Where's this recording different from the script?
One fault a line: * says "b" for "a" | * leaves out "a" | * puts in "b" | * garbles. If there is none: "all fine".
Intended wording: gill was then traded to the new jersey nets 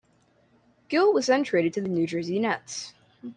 all fine